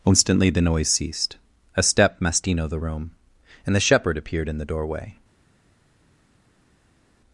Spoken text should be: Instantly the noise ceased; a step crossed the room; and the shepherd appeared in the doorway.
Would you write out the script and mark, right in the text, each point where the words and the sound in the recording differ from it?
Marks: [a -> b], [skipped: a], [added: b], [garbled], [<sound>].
Instantly the noise ceased; a step [crossed -> mastino] the room; and the shepherd appeared in the doorway.